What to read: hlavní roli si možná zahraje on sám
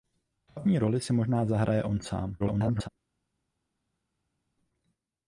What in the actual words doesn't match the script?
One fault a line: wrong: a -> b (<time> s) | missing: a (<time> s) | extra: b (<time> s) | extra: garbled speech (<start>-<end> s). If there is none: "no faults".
extra: garbled speech (2.4-2.9 s)